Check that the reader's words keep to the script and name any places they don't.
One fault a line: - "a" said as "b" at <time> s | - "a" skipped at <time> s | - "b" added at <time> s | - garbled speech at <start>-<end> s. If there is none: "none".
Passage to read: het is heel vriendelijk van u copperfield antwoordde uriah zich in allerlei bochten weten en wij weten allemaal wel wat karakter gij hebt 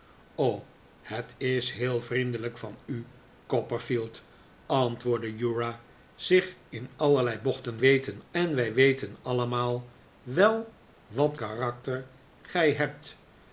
none